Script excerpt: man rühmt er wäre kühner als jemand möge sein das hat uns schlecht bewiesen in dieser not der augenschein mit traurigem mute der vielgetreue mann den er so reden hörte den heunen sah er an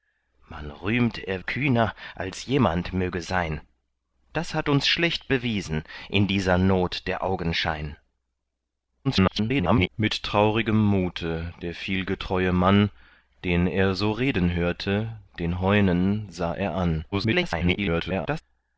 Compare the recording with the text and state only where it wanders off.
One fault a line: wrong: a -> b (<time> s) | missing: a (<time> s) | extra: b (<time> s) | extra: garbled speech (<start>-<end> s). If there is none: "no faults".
missing: wäre (1.4 s)
extra: garbled speech (9.0-9.9 s)
extra: garbled speech (17.1-18.4 s)